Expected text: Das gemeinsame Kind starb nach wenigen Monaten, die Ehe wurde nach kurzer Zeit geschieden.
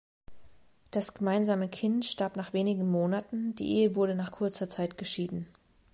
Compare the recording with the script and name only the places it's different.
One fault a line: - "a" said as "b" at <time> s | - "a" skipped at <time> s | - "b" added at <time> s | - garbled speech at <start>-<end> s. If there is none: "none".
none